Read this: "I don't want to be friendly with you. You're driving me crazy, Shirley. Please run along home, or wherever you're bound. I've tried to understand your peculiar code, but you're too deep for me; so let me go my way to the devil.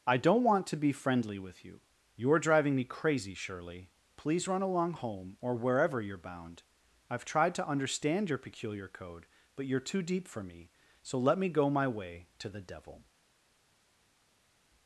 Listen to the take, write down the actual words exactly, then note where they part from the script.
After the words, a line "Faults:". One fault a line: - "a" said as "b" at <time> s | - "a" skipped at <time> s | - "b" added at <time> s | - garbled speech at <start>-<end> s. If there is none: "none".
"I don't want to be friendly with you. You're driving me crazy, Shirley. Please run along home, or wherever you're bound. I've tried to understand your peculiar code, but you're too deep for me; so let me go my way to the devil.
Faults:
none